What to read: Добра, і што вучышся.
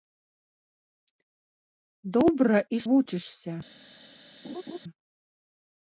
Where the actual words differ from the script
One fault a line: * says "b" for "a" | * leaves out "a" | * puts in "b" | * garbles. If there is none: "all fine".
* leaves out "што"